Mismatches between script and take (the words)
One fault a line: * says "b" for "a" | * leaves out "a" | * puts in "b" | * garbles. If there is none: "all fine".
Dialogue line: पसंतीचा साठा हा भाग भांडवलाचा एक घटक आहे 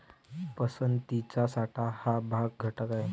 * leaves out "भांडवलाचा एक"